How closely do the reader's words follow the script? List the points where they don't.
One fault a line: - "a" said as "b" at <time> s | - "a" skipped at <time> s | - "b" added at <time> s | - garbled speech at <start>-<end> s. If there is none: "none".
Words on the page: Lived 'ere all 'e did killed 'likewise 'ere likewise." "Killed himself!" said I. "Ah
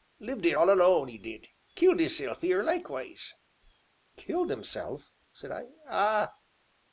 - "alone" added at 0.7 s
- "likewise" said as "isself" at 2.0 s